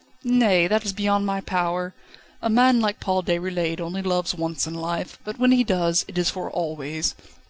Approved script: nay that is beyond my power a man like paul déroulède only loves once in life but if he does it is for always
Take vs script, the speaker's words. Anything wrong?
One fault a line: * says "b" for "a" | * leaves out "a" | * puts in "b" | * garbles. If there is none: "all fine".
* says "when" for "if"